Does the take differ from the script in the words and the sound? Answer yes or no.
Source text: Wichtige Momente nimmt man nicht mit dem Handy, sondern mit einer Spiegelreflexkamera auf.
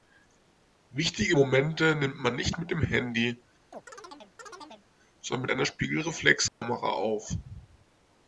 yes